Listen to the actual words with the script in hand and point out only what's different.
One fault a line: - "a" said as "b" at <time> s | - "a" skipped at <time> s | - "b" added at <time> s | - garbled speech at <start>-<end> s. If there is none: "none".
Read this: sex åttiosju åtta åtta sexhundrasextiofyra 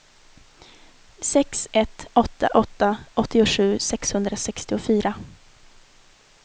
- "åttiosju" said as "ett" at 1.7 s
- "åttiosju" added at 3.1 s